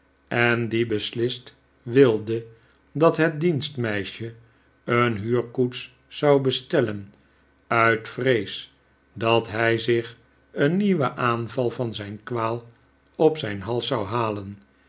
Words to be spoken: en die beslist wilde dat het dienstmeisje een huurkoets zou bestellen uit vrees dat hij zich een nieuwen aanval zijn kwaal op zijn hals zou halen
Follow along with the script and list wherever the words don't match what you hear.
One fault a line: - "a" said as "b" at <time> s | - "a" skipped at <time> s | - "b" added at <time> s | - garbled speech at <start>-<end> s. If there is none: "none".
- "van" added at 11.7 s